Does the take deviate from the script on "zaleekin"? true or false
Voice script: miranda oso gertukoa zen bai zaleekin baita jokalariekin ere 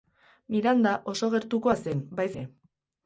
true